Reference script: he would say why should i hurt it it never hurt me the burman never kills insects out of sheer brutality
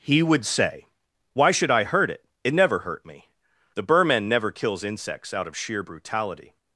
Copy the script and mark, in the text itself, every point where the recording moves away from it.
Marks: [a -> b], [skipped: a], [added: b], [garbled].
he would say why should i hurt it it never hurt me the burman never kills insects out of sheer brutality